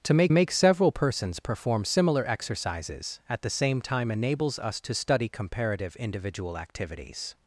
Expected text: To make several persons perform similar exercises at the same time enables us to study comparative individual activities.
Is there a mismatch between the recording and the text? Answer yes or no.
yes